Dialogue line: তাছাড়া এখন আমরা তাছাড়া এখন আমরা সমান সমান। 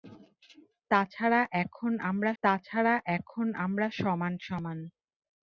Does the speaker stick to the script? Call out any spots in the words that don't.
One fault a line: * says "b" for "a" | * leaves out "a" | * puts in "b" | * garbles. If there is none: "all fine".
all fine